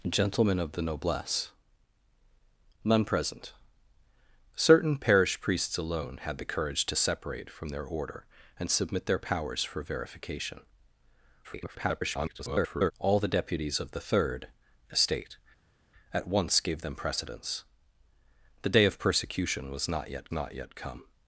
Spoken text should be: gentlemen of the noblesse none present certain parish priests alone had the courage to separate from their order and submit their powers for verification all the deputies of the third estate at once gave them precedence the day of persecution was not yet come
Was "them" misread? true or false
false